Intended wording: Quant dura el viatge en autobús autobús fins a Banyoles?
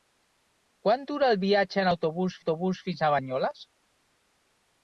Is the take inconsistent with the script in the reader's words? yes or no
no